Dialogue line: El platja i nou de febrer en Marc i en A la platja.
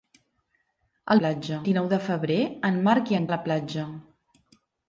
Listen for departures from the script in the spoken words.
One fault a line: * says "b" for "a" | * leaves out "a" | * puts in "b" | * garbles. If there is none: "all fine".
all fine